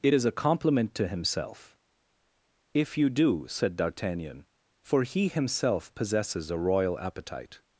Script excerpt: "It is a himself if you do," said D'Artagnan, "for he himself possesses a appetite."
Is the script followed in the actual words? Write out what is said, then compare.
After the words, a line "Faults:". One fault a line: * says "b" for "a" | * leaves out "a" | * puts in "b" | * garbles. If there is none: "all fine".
"It is a compliment to himself if you do," said D'Artagnan, "for he himself possesses a royal appetite."
Faults:
* puts in "compliment to"
* puts in "royal"